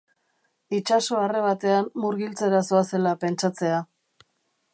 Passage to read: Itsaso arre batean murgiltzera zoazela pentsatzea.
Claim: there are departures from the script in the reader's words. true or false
false